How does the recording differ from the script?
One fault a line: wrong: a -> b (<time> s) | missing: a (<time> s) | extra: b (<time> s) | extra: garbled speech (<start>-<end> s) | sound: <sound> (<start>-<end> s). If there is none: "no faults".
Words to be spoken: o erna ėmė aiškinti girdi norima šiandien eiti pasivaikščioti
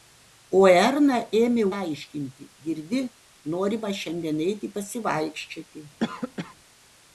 sound: cough (6.0-6.5 s)